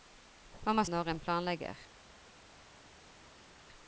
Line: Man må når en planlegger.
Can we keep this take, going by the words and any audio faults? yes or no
yes